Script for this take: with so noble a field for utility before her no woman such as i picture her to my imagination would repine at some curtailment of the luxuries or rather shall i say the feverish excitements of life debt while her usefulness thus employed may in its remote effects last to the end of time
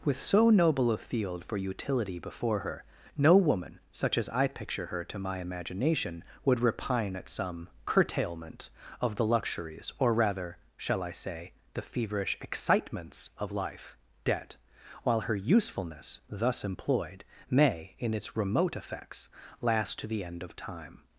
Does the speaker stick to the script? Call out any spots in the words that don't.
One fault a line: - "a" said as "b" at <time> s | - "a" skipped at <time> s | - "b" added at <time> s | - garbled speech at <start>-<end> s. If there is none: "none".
none